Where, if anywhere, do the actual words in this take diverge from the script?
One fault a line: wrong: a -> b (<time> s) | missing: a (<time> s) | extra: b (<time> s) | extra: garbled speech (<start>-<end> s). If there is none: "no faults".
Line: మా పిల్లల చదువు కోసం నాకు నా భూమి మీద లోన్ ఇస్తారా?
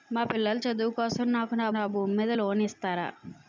extra: నా (1.7 s)